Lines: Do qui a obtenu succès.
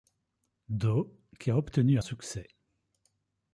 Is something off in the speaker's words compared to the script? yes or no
no